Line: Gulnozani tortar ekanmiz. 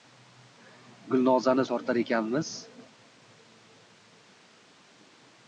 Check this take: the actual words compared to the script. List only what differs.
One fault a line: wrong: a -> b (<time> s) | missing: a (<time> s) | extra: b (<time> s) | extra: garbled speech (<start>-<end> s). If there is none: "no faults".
no faults